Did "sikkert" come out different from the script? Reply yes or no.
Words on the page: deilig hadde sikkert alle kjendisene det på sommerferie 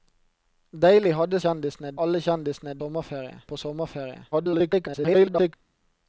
yes